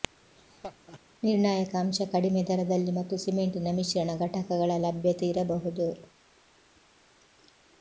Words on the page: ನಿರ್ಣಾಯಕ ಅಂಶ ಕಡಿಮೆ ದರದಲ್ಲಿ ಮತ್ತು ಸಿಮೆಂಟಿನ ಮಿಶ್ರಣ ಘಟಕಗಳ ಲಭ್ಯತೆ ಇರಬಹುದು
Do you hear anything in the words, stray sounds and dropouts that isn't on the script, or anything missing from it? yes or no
yes